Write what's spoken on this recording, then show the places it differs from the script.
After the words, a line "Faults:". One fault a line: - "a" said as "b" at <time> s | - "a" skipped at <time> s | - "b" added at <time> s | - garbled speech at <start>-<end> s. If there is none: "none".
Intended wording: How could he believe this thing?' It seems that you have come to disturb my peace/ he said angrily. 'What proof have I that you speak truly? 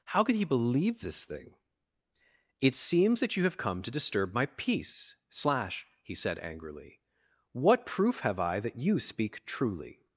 How could he believe this thing?' It seems that you have come to disturb my peace/ slash he said angrily. 'What proof have I that you speak truly?
Faults:
- "slash" added at 5.3 s